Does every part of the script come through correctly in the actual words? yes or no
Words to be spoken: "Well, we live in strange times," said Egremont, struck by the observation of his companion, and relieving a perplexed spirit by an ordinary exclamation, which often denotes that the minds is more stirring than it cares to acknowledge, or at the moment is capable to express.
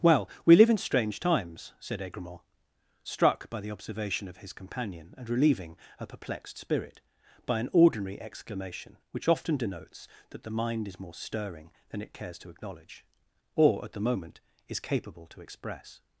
no